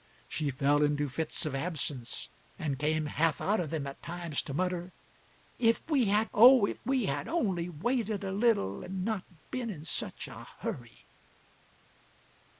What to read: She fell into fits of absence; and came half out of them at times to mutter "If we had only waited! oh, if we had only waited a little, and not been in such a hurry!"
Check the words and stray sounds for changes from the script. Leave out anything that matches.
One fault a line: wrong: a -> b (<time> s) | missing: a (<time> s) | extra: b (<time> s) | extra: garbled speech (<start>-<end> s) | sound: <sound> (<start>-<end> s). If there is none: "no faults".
missing: only waited (6.3 s)